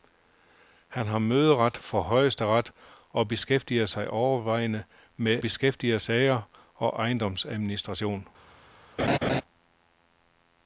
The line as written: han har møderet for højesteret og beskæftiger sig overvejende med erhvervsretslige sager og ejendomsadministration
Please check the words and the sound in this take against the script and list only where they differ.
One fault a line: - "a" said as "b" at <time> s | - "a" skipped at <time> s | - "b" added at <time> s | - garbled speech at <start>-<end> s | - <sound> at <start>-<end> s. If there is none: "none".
- "erhvervsretslige" said as "beskæftiger" at 5.4 s
- laugh at 9.0-9.4 s